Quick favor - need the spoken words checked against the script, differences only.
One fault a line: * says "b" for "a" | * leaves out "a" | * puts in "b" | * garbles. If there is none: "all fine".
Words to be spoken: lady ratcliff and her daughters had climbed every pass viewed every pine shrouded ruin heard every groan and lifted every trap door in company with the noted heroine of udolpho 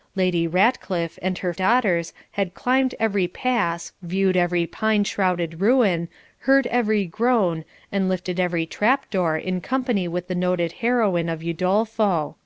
all fine